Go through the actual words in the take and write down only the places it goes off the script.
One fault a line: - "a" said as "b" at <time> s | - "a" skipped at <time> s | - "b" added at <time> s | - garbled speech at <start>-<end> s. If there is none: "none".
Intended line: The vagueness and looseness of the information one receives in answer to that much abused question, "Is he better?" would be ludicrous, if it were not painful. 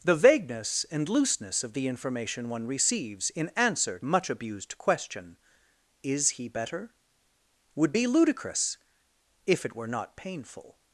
- "to that" skipped at 4.0 s